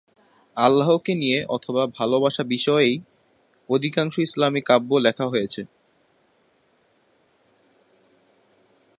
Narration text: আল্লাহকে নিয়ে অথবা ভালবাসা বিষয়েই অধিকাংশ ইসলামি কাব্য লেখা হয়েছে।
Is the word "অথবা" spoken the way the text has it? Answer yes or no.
yes